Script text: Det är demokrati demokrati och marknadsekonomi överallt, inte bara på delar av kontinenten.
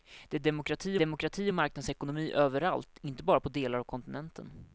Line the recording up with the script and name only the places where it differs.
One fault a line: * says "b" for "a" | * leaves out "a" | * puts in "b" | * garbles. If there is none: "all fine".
all fine